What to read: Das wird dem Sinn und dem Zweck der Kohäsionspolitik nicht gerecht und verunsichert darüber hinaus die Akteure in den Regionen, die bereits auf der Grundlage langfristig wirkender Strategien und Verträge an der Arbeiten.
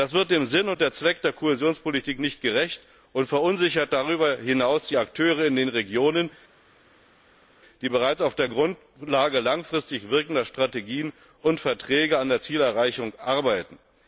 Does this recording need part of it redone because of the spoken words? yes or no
yes